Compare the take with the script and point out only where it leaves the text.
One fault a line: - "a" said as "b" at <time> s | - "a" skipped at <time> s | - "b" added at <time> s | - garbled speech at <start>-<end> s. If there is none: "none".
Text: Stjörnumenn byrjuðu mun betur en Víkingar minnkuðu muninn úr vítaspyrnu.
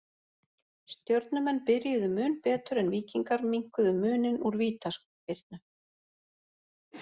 none